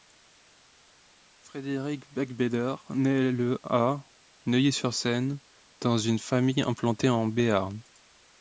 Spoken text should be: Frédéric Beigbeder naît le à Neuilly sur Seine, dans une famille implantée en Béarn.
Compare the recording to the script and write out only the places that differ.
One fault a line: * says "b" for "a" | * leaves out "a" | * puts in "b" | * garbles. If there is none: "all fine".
all fine